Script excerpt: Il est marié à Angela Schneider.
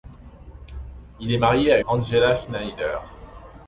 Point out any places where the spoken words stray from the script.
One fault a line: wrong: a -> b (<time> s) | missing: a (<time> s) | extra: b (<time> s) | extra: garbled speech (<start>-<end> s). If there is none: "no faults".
no faults